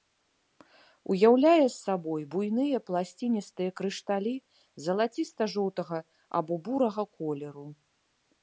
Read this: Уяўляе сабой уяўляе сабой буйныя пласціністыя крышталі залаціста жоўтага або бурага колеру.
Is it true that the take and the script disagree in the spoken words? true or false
true